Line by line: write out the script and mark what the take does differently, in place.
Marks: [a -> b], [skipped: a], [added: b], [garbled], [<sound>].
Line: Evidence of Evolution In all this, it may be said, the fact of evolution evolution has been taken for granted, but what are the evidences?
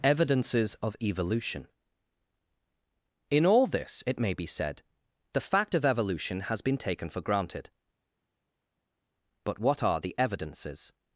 [Evidence -> Evidences] of Evolution In all this, it may be said, the fact of evolution [skipped: evolution] has been taken for granted, but what are the evidences?